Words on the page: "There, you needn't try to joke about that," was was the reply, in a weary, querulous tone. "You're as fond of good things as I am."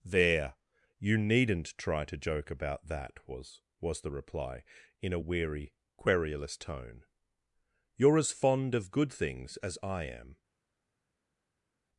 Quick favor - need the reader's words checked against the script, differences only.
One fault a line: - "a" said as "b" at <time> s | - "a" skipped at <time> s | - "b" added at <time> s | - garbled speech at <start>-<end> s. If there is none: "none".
none